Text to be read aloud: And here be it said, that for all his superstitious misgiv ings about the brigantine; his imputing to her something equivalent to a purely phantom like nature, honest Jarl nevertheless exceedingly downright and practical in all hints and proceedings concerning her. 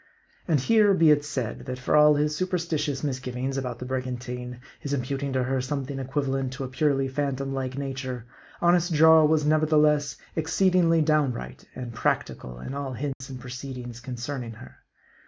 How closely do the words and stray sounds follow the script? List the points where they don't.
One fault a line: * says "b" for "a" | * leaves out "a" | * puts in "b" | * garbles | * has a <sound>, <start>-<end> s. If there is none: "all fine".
* puts in "was"
* has a dropout, 13.1-13.2 s